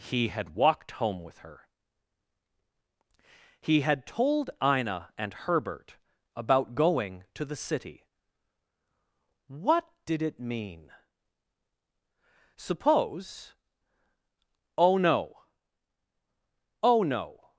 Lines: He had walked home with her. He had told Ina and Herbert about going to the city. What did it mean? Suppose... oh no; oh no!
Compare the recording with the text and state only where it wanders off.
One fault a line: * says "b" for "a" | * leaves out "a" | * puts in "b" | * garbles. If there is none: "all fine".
all fine